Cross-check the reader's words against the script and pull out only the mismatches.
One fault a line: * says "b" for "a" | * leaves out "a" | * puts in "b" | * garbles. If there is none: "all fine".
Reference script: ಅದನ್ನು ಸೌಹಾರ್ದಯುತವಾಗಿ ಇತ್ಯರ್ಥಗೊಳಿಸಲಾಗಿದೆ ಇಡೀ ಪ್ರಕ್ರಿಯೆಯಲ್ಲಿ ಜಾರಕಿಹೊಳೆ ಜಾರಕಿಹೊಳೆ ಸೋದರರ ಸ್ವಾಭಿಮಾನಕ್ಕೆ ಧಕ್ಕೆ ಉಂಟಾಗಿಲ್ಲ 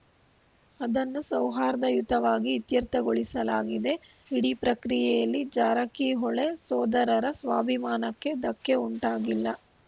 * leaves out "ಜಾರಕಿಹೊಳೆ"